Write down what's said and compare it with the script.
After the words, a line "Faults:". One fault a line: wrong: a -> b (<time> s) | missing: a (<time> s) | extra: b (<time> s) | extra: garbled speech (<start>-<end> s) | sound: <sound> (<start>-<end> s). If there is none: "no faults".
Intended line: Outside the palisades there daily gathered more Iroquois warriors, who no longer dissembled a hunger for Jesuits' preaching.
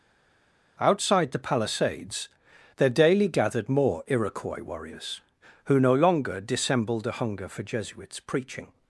Outside the palisades there daily gathered more Iroquois warriors, who no longer dissembled a hunger for Jesuits' preaching.
Faults:
no faults